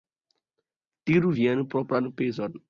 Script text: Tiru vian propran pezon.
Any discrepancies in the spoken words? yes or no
no